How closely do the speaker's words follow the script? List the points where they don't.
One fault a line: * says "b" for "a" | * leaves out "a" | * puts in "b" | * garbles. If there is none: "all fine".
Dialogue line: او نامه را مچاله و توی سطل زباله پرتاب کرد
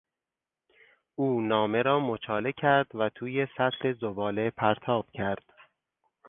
* puts in "کرد"